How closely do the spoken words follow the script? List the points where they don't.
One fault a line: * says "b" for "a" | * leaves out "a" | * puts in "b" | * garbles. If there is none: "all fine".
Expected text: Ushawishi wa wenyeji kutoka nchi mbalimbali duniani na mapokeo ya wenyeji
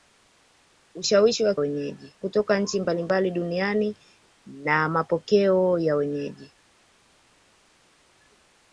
all fine